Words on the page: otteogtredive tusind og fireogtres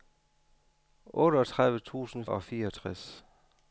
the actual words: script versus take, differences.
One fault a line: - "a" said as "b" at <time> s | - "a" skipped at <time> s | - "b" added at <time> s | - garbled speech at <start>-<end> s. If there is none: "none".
none